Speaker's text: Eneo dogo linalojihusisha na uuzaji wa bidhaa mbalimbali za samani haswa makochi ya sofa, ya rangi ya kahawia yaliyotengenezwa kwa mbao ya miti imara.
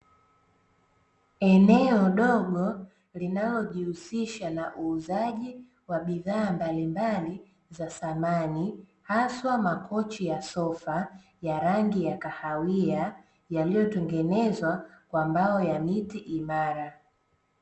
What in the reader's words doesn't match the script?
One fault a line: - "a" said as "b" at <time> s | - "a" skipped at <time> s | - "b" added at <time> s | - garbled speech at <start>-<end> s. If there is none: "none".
none